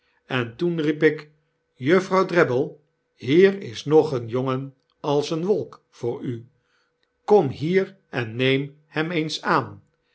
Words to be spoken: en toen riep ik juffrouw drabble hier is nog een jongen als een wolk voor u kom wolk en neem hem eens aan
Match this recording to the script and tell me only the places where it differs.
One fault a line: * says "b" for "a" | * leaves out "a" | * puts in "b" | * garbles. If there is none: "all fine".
* says "hier" for "wolk"